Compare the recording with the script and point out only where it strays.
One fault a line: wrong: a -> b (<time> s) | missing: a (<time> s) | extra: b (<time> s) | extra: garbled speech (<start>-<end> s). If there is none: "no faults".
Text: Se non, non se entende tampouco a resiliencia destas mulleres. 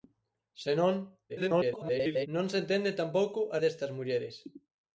extra: garbled speech (1.3-2.3 s)
missing: resiliencia (3.6 s)